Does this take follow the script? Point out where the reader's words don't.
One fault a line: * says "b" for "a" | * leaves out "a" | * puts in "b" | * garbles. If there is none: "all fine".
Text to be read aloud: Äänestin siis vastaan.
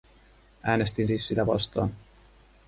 * puts in "sitä"